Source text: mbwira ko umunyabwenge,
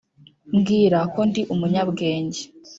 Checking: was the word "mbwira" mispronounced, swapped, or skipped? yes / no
no